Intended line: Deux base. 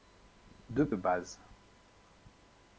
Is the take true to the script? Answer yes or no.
yes